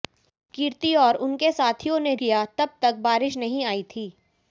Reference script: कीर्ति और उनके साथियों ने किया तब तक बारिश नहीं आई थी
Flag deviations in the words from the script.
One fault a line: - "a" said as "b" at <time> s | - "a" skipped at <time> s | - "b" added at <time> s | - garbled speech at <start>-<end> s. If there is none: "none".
none